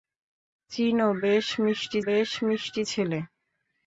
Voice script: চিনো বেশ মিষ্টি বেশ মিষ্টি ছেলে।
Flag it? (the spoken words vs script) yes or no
no